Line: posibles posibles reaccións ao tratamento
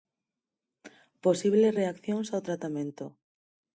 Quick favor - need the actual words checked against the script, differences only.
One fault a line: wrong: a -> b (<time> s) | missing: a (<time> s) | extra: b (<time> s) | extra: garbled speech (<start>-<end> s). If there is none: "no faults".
missing: posibles (1.8 s)